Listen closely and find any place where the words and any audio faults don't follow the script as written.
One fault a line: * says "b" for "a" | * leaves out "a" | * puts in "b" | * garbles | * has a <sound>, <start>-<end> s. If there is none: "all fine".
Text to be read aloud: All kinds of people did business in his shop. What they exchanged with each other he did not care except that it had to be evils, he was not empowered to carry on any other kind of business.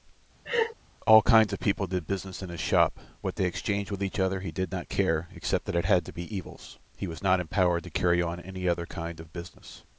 * has a laugh, 0.4-0.7 s